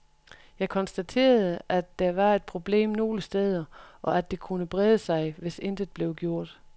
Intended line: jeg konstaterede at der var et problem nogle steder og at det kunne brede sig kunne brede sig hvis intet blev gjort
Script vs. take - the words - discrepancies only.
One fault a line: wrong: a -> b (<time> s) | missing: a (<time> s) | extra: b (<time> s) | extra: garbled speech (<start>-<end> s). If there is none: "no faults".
missing: kunne brede sig (5.3 s)